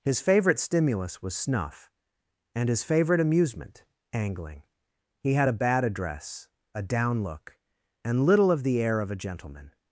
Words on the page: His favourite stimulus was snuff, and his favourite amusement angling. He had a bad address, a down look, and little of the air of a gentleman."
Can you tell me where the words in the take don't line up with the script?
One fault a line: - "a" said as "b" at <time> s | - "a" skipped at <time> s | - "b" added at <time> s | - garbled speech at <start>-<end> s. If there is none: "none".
none